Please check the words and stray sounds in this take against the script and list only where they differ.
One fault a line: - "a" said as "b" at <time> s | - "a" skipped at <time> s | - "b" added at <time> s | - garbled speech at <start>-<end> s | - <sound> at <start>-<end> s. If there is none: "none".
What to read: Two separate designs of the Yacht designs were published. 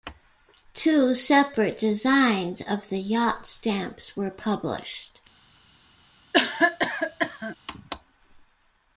- "designs" said as "stamps" at 3.5 s
- cough at 6.3-7.6 s